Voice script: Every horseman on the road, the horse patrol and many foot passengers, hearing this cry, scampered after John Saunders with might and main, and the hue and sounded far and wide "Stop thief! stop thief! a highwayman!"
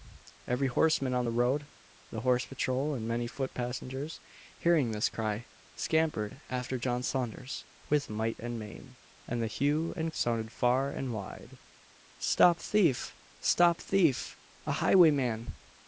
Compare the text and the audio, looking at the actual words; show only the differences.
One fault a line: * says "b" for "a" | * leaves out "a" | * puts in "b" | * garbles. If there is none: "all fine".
all fine